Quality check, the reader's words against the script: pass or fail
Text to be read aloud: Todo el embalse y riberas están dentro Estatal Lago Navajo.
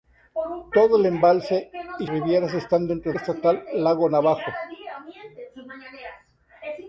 pass